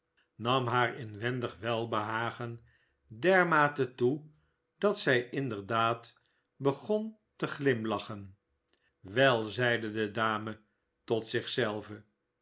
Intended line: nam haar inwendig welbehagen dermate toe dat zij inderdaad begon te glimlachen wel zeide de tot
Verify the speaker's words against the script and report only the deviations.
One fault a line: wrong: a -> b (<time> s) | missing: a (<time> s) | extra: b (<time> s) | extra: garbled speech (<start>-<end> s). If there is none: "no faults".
extra: dame (10.1 s)